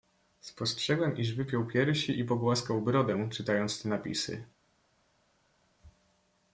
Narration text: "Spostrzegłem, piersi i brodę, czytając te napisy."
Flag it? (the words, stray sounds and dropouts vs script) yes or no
yes